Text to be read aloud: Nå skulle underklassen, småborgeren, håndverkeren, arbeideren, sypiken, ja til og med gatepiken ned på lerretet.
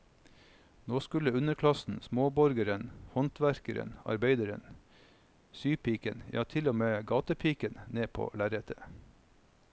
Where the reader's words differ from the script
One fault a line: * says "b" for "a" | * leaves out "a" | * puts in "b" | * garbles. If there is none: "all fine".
all fine